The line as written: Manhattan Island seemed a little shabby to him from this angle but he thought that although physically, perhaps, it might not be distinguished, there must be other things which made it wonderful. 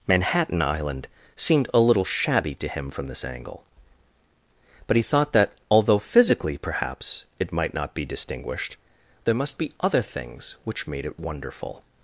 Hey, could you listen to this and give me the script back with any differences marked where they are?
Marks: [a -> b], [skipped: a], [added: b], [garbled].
Manhattan Island seemed a little shabby to him from this angle but he thought that although physically, perhaps, it might not be distinguished, there must be other things which made it wonderful.